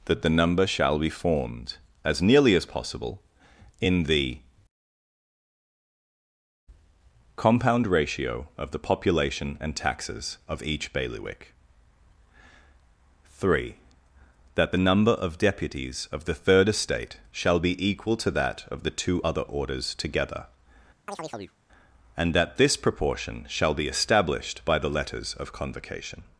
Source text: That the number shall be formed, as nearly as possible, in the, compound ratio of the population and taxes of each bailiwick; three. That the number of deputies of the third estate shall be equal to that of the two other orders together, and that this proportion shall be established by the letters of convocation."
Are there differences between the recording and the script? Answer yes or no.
no